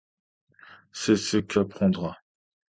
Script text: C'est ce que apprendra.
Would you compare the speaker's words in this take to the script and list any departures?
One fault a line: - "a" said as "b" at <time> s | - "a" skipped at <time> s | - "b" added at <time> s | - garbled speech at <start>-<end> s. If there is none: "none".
none